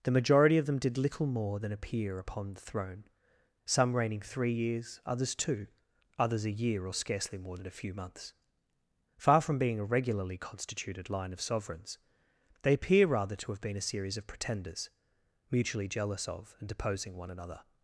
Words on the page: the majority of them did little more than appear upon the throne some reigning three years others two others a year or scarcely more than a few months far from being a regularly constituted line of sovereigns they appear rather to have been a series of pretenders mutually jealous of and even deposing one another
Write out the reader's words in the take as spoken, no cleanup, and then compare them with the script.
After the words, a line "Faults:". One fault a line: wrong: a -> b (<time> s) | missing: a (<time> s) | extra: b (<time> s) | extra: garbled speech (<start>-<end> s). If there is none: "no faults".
the majority of them did little more than appear upon the throne some reigning three years others two others a year or scarcely more than a few months far from being a regularly constituted line of sovereigns they appear rather to have been a series of pretenders mutually jealous of and deposing one another
Faults:
missing: even (16.7 s)